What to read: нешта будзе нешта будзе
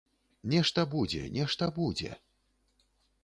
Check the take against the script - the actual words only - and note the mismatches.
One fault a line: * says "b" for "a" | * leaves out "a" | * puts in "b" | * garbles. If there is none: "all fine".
all fine